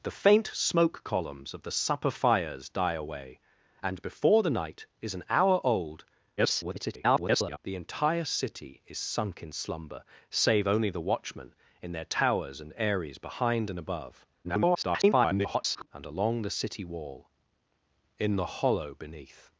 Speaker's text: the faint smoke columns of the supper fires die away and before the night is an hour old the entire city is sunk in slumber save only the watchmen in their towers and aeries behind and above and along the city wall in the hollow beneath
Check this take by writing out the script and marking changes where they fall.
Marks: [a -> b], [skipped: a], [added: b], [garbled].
the faint smoke columns of the supper fires die away and before the night is an hour old [garbled] the entire city is sunk in slumber save only the watchmen in their towers and aeries behind and above [garbled] and along the city wall in the hollow beneath